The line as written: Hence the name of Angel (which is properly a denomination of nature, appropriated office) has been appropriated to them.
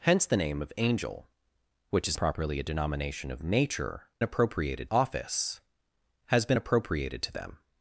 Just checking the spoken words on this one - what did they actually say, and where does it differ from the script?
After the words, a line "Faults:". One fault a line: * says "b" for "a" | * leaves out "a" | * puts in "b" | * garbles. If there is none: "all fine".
Hence the name of Angel (which is properly a denomination of nature, appropriated office) has been appropriated to them.
Faults:
all fine